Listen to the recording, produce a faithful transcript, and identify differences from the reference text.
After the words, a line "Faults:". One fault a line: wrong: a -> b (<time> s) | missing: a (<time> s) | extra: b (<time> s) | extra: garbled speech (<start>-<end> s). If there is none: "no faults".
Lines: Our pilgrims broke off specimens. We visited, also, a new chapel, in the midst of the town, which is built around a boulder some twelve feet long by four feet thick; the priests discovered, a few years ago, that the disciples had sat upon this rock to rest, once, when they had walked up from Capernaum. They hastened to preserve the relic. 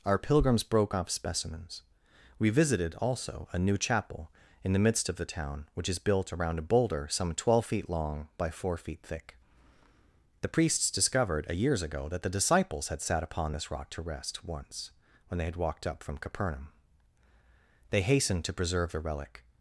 Our pilgrims broke off specimens. We visited, also, a new chapel, in the midst of the town, which is built around a boulder some twelve feet long by four feet thick; the priests discovered, a years ago, that the disciples had sat upon this rock to rest, once, when they had walked up from Capernaum. They hastened to preserve the relic.
Faults:
missing: few (11.5 s)